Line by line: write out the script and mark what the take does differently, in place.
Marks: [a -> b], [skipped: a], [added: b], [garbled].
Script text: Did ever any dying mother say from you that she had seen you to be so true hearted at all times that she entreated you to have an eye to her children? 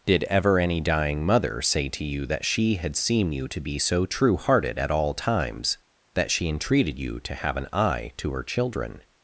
Did ever any dying mother say [from -> to] you that she had seen you to be so true hearted at all times that she entreated you to have an eye to her children?